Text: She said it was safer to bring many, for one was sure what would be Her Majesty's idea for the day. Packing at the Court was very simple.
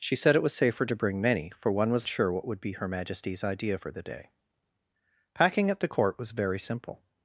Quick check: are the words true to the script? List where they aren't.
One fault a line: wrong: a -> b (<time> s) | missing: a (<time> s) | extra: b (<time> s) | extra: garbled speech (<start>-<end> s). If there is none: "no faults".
no faults